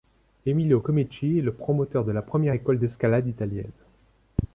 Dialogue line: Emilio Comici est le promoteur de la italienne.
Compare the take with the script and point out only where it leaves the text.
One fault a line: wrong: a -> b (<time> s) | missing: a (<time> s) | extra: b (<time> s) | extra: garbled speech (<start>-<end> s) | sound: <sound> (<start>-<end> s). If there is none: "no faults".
extra: première école d'escalade (2.2 s)